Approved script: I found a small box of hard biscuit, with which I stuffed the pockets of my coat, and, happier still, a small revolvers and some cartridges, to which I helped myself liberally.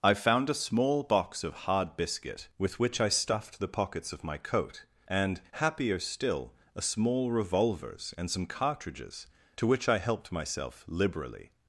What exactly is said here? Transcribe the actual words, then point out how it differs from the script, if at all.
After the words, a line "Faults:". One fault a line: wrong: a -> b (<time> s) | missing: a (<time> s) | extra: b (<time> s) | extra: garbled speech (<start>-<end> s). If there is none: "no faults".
I found a small box of hard biscuit, with which I stuffed the pockets of my coat, and, happier still, a small revolvers and some cartridges, to which I helped myself liberally.
Faults:
no faults